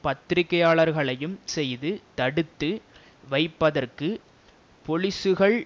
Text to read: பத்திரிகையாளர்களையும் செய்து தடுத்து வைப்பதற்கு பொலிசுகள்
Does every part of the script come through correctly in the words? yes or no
yes